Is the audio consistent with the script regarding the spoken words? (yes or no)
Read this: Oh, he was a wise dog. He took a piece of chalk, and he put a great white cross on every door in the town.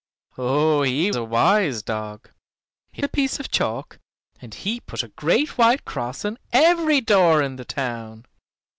no